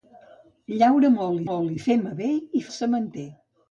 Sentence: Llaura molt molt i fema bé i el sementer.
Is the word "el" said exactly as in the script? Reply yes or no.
yes